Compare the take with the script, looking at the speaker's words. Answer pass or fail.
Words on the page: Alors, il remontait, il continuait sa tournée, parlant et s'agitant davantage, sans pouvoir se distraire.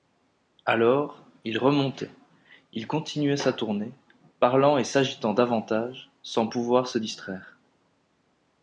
pass